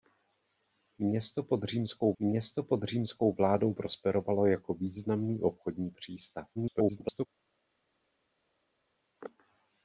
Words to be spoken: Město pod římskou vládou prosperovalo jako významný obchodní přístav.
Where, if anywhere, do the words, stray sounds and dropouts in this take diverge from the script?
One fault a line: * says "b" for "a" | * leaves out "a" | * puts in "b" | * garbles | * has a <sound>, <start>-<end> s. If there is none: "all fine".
* puts in "město pod římskou"
* garbles